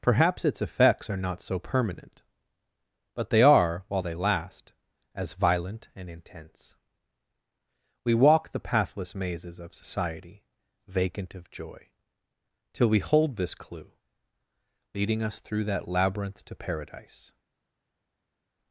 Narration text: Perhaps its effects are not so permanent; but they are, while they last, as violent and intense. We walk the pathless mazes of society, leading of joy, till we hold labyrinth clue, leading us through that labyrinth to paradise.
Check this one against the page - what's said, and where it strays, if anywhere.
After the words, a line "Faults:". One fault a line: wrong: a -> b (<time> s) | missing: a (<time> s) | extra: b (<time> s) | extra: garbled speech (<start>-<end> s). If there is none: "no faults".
Perhaps its effects are not so permanent; but they are, while they last, as violent and intense. We walk the pathless mazes of society, vacant of joy, till we hold this clue, leading us through that labyrinth to paradise.
Faults:
wrong: leading -> vacant (10.9 s)
wrong: labyrinth -> this (13.4 s)